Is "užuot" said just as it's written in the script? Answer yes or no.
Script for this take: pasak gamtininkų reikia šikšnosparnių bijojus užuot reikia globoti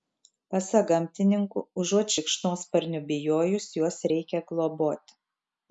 no